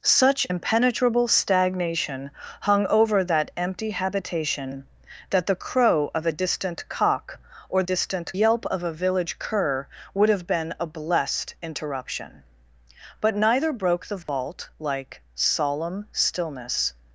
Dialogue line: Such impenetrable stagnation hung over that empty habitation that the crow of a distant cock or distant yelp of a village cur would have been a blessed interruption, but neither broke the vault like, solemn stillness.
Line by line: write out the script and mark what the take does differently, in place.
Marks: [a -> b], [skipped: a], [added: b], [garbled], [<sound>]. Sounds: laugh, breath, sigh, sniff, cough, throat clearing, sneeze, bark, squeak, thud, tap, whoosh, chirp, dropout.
Such impenetrable stagnation hung over that empty habitation that the crow of a distant cock or distant yelp of a village cur would have been a blessed interruption, but neither broke the vault [dropout] like, solemn stillness.